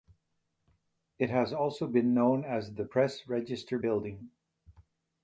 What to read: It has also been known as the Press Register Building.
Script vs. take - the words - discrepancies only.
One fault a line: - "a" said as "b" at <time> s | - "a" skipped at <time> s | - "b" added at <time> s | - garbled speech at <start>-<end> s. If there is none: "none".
none